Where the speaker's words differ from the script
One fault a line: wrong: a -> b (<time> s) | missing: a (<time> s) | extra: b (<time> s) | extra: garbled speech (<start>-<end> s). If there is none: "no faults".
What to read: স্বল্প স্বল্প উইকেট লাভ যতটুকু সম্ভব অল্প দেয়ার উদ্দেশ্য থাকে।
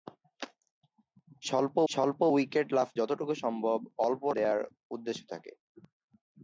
no faults